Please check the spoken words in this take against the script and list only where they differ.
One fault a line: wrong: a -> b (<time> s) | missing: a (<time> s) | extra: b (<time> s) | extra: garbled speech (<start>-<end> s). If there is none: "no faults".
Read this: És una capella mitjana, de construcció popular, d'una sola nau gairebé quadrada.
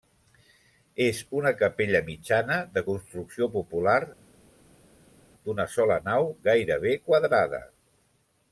no faults